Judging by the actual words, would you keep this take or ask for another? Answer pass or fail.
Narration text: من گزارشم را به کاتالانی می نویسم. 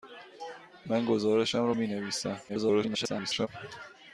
fail